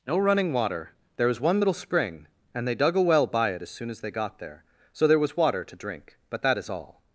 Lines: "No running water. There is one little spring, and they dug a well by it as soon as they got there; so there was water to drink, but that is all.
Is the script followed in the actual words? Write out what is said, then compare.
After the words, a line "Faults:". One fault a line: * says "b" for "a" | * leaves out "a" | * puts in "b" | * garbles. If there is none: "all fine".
"No running water. There was one little spring, and they dug a well by it as soon as they got there; so there was water to drink, but that is all.
Faults:
* says "was" for "is"